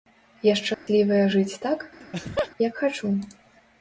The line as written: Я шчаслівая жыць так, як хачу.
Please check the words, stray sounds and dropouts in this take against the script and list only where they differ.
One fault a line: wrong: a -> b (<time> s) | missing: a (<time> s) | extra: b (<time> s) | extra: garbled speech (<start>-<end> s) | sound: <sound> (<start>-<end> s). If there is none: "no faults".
sound: dropout (0.7-0.9 s)
sound: laugh (2.0-2.5 s)